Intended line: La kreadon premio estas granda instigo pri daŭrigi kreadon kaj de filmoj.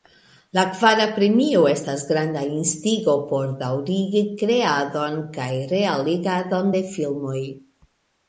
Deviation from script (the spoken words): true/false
true